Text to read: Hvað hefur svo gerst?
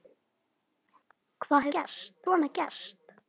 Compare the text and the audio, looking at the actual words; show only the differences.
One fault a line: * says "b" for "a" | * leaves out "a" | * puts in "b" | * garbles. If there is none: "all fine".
* says "gerst" for "hefur"